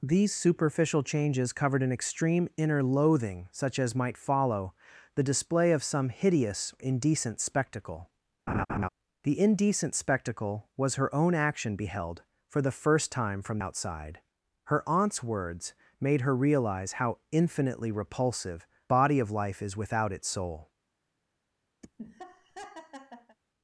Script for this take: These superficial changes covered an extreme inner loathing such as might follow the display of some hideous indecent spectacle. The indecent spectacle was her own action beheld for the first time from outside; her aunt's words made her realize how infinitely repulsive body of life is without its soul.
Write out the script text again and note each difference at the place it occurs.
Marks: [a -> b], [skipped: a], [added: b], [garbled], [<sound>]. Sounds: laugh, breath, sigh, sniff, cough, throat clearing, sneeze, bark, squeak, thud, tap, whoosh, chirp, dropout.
These superficial changes covered an extreme inner loathing such as might follow the display of some hideous indecent spectacle. [laugh] The indecent spectacle was her own action beheld for the first time from outside; her aunt's words made her realize how infinitely repulsive body of life is without its soul. [laugh]